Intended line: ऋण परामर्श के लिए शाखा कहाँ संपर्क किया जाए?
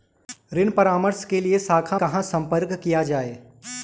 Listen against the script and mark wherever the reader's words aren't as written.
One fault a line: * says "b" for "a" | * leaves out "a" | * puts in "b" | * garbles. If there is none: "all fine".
all fine